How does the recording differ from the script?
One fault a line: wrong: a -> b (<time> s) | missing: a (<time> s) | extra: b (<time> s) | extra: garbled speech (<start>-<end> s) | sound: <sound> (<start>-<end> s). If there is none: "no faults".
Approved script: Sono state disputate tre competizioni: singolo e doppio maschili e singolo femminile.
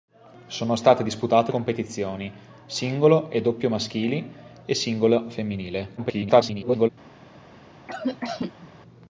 missing: tre (1.5 s)
extra: garbled speech (6.0-6.9 s)
sound: cough (7.9-8.7 s)